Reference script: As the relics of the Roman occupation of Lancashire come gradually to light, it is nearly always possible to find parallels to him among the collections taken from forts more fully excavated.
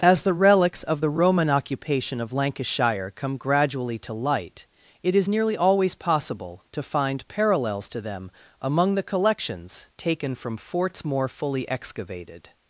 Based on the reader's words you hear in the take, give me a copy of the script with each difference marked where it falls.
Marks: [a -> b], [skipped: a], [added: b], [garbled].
As the relics of the Roman occupation of Lancashire come gradually to light, it is nearly always possible to find parallels to [him -> them] among the collections taken from forts more fully excavated.